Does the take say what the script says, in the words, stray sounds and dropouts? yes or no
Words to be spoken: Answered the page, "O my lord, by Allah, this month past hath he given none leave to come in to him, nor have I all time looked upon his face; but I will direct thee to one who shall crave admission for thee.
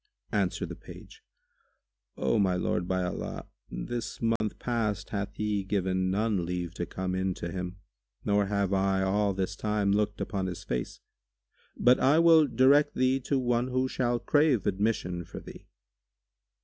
no